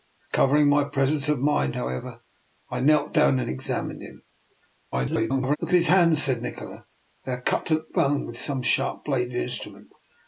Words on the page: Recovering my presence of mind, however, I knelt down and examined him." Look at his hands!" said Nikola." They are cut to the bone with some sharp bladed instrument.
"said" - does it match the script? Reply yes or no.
yes